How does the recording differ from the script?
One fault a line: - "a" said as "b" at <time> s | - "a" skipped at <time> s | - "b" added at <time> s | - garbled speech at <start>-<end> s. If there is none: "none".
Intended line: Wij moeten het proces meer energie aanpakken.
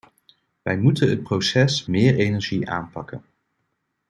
none